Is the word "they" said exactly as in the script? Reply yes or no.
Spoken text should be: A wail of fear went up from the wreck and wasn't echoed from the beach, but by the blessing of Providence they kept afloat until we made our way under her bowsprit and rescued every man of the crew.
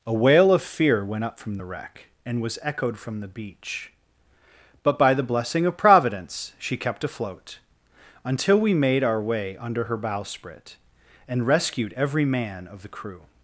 no